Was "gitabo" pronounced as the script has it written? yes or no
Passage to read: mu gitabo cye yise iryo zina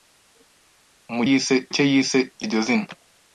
no